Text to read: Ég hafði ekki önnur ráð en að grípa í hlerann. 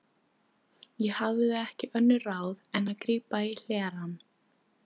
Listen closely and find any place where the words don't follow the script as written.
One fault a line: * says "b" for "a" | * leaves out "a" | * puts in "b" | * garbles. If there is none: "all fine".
all fine